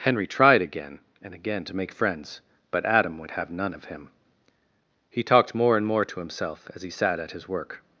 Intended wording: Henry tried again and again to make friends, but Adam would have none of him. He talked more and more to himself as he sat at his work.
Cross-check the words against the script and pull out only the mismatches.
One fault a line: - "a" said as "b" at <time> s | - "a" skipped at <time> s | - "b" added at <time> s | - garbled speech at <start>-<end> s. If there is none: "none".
none